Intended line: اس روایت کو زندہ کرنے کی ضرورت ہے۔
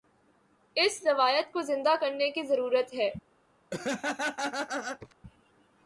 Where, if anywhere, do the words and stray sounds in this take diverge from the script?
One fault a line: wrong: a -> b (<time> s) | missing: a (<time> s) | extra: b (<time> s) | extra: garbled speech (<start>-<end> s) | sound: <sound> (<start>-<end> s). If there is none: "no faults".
sound: laugh (3.7-5.1 s)